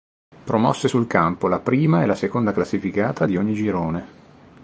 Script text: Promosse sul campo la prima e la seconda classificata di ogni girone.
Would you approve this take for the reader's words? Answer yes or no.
yes